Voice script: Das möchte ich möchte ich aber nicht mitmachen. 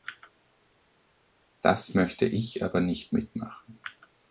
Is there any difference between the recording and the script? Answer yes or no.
yes